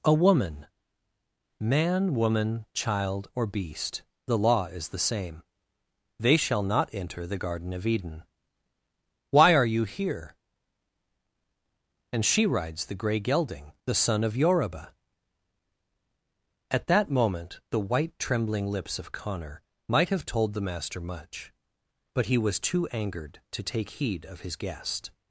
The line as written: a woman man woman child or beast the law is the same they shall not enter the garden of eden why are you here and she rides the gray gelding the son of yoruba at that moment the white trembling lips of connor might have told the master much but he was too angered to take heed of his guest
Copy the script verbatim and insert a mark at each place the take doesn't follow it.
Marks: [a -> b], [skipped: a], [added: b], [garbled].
a woman man woman child or beast the law is the same they shall not enter the garden of eden why are you here and she rides the gray gelding the son of yoruba at that moment the white trembling lips of connor might have told the master much but he was too angered to take heed of his guest